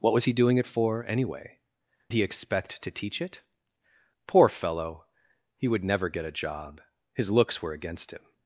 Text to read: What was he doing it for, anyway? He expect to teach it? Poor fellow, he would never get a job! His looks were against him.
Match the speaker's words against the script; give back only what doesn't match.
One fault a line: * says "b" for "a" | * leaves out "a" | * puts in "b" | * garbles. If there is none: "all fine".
all fine